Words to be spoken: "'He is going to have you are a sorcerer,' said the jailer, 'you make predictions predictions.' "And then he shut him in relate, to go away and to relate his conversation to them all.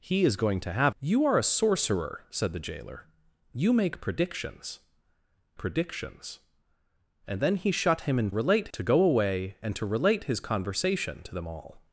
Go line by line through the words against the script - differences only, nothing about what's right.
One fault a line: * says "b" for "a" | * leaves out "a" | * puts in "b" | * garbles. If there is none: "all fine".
all fine